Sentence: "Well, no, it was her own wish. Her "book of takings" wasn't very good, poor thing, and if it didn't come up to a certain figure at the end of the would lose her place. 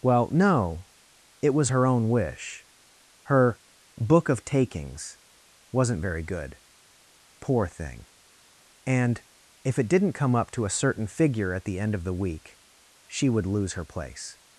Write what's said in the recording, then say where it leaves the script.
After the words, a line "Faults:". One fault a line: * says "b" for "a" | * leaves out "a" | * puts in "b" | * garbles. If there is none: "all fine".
"Well, no, it was her own wish. Her "book of takings" wasn't very good, poor thing, and if it didn't come up to a certain figure at the end of the week she would lose her place.
Faults:
* puts in "week she"